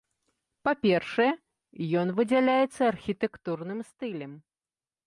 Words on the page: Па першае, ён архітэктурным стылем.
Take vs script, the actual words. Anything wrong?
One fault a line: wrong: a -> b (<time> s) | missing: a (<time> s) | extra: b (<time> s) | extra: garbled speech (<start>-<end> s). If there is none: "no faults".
extra: выдзяляецца (2.2 s)